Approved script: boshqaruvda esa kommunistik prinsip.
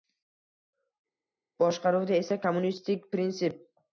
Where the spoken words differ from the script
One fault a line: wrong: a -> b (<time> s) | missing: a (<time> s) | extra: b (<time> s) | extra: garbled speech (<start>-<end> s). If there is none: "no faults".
no faults